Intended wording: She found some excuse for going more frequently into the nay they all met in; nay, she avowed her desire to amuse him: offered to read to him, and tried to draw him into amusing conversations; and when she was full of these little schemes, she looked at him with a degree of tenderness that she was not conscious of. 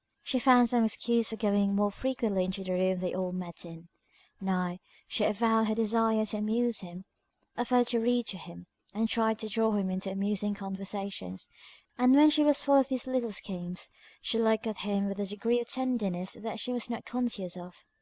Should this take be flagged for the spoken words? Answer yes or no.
yes